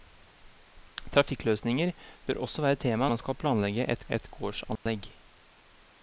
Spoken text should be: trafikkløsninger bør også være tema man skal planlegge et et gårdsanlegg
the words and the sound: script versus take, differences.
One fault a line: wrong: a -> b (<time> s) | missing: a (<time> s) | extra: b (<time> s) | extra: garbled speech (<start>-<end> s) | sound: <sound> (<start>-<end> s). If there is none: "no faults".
sound: dropout (4.8-4.9 s)